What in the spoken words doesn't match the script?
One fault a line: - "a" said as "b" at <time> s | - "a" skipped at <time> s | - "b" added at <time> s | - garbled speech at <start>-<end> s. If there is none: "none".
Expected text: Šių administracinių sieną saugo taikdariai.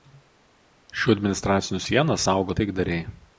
none